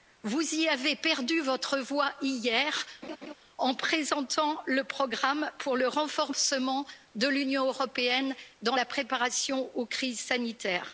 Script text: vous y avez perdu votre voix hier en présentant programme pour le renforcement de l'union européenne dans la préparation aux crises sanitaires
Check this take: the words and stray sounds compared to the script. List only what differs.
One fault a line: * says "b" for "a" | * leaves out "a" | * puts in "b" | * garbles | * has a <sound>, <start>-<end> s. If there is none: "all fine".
* has a laugh, 3.0-3.3 s
* puts in "le"